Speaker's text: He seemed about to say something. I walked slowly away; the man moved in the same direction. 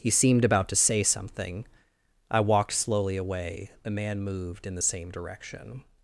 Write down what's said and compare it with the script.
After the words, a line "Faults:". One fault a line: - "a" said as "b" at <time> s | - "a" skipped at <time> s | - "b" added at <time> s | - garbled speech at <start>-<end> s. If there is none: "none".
He seemed about to say something. I walked slowly away; the man moved in the same direction.
Faults:
none